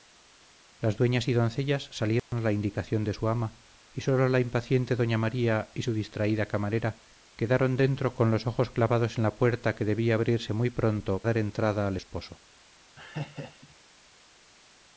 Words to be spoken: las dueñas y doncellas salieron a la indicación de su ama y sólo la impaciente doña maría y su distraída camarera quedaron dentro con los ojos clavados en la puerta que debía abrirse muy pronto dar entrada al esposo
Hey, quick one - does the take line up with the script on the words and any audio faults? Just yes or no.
no